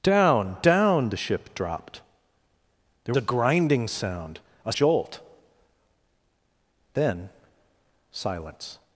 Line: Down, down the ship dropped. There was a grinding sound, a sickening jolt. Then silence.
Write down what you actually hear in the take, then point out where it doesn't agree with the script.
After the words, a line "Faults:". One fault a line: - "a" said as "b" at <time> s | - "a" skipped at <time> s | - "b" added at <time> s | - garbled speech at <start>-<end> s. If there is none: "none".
Down, down the ship dropped. There a grinding sound, a jolt. Then silence.
Faults:
- "was" skipped at 3.1 s
- "sickening" skipped at 4.7 s